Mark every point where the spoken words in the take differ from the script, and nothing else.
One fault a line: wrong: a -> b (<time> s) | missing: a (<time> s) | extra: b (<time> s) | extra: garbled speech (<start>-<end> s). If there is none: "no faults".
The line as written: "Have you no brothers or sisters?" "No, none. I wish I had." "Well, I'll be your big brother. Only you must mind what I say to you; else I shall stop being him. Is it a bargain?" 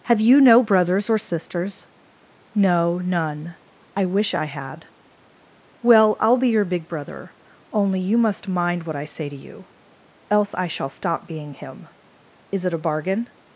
no faults